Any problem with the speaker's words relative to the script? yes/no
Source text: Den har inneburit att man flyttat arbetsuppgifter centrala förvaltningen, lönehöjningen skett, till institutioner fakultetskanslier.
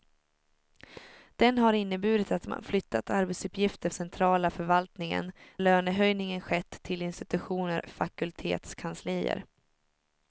no